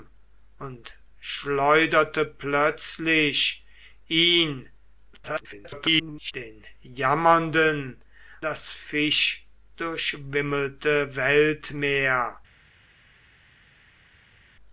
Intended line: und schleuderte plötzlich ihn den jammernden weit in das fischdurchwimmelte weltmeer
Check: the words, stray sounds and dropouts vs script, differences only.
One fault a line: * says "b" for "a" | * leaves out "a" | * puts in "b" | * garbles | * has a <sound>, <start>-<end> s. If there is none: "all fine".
* garbles
* leaves out "weit in"